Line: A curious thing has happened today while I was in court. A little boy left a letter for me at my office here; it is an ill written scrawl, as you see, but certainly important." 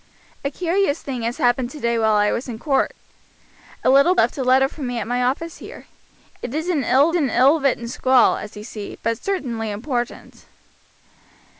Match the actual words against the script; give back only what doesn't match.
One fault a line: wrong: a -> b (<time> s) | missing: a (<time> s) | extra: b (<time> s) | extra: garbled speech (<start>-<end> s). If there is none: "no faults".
missing: boy (4.2 s)
extra: an ill (7.2 s)